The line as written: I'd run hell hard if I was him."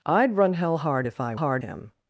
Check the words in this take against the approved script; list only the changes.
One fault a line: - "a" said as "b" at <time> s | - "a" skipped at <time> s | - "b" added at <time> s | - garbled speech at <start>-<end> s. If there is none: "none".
- "was" said as "hard" at 1.4 s